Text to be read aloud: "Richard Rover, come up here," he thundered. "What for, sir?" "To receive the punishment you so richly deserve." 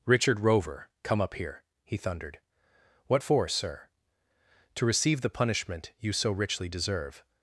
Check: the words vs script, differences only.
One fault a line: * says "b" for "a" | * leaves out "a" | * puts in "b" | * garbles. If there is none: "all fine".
all fine